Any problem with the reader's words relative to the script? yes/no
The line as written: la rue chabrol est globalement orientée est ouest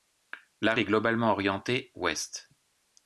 yes